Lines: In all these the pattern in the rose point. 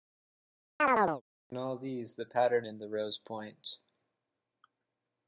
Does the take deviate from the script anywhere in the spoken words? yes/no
no